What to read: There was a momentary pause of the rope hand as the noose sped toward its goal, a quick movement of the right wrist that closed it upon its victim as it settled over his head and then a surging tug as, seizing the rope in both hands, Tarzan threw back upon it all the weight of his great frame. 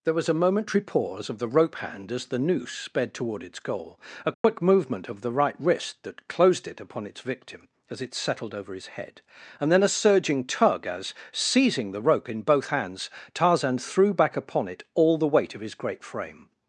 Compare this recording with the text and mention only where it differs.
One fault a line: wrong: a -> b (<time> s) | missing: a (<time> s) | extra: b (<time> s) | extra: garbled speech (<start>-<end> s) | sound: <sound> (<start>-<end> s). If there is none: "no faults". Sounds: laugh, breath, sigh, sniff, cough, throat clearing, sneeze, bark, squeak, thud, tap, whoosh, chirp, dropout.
sound: dropout (4.3-4.4 s)